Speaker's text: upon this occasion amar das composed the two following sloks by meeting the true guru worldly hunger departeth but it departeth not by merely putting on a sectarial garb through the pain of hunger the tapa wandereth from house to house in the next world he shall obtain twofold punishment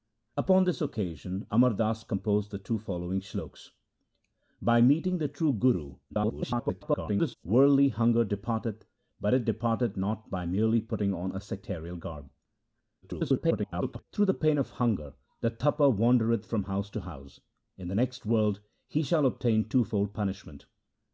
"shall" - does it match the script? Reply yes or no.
yes